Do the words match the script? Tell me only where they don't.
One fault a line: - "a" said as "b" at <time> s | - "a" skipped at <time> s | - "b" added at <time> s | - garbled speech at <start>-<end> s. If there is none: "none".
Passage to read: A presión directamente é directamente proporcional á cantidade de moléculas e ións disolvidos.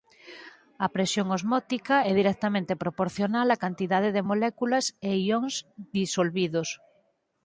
- "directamente" said as "osmótica" at 1.4 s